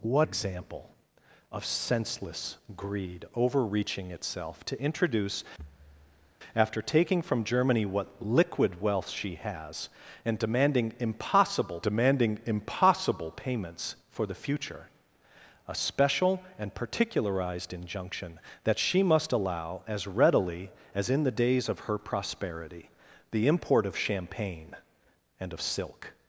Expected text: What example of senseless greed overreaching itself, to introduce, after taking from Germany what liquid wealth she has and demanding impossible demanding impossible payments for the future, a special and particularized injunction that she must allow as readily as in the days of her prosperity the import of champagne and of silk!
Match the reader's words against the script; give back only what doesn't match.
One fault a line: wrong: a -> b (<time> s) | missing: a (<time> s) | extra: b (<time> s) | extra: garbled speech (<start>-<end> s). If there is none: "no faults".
no faults